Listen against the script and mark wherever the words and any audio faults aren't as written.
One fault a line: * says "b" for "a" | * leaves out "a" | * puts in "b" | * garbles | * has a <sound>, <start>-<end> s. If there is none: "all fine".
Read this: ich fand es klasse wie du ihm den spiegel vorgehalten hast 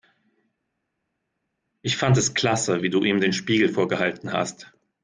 all fine